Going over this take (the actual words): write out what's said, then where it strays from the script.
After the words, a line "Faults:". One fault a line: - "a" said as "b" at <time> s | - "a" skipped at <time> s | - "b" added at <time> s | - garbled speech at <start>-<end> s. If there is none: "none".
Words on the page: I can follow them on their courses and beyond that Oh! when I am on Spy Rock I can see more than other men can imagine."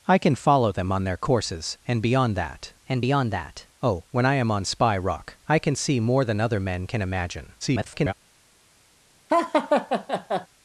I can follow them on their courses and beyond that and beyond that Oh! when I am on Spy Rock I can see more than other men can imagine." [garbled]
Faults:
- "and beyond that" added at 2.9 s
- garbled speech at 7.6-8.1 s